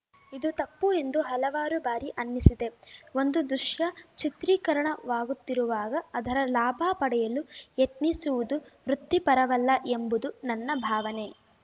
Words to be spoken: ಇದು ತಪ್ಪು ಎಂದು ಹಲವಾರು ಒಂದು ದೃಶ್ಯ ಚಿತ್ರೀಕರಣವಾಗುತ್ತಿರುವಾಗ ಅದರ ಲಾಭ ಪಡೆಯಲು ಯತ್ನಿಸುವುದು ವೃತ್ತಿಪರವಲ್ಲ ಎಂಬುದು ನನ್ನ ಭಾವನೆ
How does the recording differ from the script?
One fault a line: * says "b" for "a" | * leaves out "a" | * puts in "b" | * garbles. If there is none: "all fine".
* puts in "ಬಾರಿ ಅನ್ನಿಸಿದೆ"